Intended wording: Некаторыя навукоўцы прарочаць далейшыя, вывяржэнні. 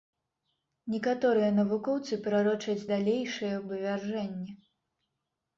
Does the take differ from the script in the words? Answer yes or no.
no